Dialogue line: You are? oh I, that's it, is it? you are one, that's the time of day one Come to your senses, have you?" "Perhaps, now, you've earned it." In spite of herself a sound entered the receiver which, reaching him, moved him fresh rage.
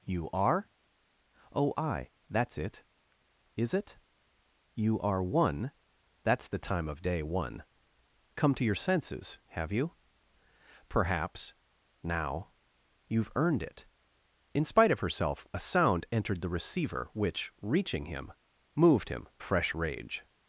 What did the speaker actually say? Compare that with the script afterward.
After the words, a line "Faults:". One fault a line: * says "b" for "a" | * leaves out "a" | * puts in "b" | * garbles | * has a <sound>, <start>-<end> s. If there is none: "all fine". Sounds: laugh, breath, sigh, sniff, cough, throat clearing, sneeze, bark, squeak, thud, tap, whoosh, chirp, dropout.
You are? oh I, that's it, is it? you are one, that's the time of day one Come to your senses, have you?" "Perhaps, now, you've earned it." In spite of herself a sound entered the receiver which, reaching him, moved him fresh rage.
Faults:
all fine